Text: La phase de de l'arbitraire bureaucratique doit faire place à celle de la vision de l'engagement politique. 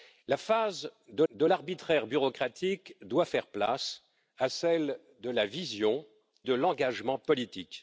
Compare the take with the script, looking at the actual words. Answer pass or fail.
pass